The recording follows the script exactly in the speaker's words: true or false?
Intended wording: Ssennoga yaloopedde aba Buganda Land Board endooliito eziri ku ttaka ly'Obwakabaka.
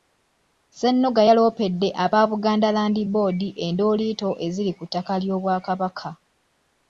true